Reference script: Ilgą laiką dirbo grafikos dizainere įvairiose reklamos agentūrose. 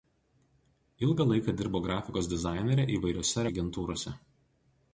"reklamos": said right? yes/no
no